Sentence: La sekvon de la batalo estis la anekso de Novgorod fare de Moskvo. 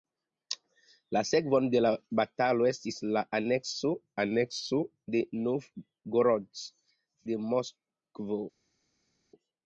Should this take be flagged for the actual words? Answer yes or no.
yes